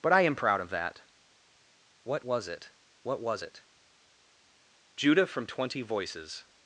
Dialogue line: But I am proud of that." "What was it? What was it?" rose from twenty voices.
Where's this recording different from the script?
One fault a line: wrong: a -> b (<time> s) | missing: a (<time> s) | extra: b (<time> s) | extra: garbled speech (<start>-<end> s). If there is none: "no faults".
wrong: rose -> judah (4.9 s)